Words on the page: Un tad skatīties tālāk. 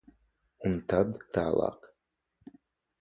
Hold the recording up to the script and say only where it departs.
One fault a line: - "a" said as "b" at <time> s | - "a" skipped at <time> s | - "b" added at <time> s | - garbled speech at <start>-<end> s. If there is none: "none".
- "skatīties" skipped at 1.2 s